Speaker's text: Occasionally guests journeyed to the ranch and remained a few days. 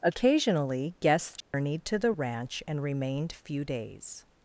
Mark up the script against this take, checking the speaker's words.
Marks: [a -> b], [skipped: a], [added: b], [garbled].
Occasionally guests journeyed to the ranch and remained [skipped: a] few days.